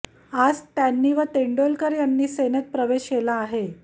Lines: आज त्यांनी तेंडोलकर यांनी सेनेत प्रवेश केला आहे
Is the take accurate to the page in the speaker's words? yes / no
no